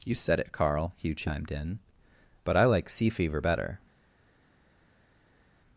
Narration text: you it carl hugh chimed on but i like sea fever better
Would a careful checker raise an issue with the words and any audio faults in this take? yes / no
yes